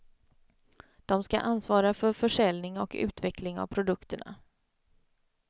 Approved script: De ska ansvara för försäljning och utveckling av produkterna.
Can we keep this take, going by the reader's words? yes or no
yes